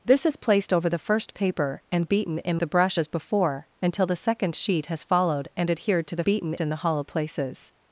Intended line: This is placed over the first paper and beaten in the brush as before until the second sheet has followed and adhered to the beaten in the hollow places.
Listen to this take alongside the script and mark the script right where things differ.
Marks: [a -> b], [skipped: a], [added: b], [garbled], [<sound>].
This is placed over the first paper and beaten in the brush as before until the second sheet has followed and adhered to the beaten in the hollow places.